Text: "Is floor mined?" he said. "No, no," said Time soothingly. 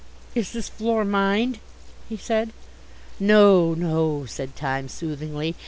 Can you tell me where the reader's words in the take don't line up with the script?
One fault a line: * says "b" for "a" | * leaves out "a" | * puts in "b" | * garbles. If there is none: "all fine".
* puts in "this"